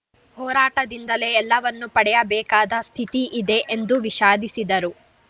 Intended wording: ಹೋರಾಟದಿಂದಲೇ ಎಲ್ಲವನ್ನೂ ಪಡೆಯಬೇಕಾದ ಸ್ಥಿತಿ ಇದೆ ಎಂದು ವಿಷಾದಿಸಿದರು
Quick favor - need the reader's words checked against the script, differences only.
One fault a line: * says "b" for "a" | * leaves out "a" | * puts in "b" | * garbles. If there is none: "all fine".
all fine